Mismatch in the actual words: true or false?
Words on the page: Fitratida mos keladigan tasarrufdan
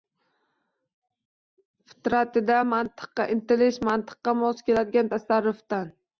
true